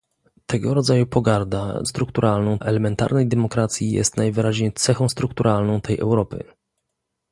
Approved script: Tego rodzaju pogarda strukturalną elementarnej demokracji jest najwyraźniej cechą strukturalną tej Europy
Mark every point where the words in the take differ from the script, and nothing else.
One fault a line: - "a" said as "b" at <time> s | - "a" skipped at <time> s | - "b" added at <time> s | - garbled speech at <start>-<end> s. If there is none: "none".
none